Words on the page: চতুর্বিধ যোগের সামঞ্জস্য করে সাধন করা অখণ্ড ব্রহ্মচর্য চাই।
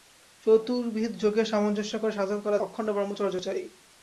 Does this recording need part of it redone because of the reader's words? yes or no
no